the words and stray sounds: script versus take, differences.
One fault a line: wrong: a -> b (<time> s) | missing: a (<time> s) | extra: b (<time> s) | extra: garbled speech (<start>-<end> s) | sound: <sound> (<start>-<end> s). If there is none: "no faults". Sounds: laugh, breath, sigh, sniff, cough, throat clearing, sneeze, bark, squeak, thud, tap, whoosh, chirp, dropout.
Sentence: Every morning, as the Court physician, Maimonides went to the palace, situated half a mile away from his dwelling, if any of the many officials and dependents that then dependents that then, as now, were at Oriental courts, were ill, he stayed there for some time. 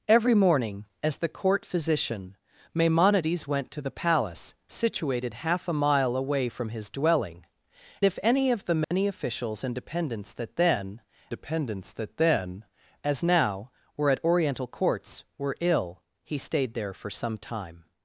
sound: dropout (8.8-8.9 s)